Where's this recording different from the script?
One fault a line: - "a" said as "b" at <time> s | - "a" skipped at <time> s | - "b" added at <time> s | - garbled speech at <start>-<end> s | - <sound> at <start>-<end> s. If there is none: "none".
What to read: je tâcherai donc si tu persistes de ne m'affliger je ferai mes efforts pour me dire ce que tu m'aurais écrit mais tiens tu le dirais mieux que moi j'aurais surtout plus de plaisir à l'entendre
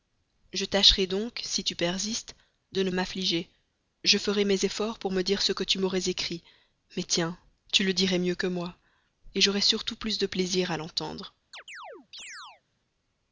- chirp at 11.5-12.6 s